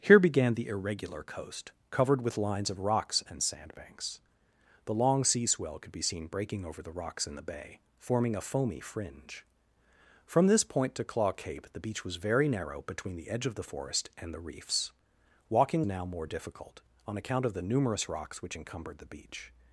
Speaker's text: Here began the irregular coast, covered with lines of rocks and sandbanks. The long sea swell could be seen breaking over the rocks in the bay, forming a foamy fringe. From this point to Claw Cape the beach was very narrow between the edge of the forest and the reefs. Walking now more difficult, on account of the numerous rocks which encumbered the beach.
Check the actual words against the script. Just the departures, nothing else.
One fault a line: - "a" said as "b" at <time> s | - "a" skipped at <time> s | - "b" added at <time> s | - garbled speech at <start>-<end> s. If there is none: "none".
none